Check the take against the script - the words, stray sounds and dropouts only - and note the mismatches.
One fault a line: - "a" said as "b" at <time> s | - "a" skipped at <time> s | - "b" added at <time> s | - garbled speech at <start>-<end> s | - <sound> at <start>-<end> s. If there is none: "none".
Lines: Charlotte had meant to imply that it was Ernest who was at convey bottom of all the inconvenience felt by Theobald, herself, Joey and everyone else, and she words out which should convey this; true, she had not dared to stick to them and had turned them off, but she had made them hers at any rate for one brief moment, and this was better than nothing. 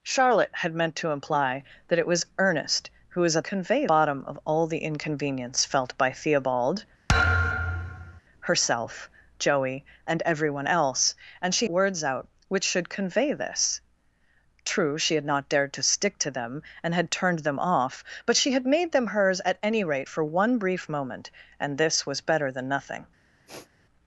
- thud at 7.1-8.2 s
- sniff at 23.5-23.7 s